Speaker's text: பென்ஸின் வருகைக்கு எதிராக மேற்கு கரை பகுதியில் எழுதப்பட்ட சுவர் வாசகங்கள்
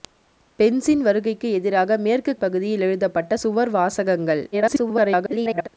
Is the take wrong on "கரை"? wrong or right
wrong